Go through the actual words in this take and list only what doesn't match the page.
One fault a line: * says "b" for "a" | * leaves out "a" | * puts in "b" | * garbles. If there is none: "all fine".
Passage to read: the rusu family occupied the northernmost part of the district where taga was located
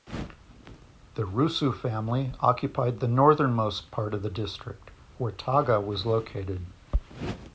all fine